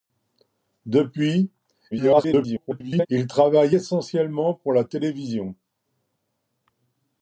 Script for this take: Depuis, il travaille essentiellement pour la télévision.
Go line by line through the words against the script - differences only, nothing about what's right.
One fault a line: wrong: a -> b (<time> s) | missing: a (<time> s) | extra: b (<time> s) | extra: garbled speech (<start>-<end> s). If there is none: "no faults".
extra: garbled speech (1.9-3.1 s)